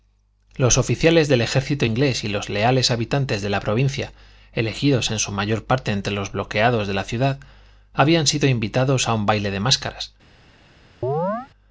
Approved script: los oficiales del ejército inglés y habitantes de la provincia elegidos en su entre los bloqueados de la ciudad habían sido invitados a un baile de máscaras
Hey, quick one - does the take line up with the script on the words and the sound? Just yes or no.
no